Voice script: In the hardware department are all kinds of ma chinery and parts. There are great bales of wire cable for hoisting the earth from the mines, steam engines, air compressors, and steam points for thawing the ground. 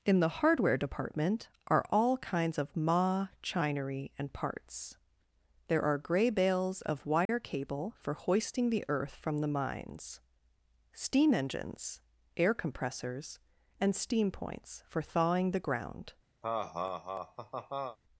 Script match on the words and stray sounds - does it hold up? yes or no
no